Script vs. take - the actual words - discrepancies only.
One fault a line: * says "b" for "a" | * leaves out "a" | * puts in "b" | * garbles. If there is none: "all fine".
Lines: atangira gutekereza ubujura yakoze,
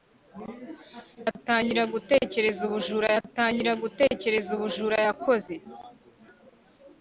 * puts in "atangira gutekereza ubujura"